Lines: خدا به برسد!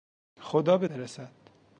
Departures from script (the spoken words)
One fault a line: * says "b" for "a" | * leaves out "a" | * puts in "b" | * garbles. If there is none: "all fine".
all fine